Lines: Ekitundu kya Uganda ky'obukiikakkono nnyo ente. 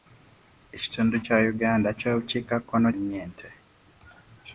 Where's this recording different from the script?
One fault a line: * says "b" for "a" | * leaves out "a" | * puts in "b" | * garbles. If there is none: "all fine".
all fine